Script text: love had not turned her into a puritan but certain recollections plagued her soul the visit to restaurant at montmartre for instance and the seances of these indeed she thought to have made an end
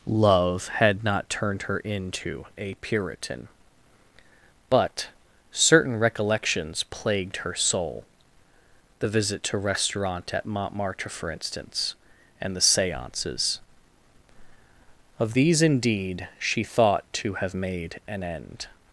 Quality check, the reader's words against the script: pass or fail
pass